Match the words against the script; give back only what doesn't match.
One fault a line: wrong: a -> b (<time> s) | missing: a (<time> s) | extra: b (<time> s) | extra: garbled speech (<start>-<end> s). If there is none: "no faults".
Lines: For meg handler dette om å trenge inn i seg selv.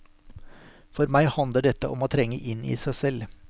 no faults